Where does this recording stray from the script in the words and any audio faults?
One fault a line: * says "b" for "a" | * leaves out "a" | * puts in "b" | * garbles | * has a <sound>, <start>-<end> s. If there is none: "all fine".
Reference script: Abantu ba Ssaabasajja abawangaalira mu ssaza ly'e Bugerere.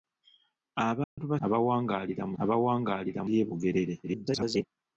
* has a dropout, 1.0-1.2 s
* leaves out "Ssaabasajja"
* says "abawangaalira" for "ssaza"
* garbles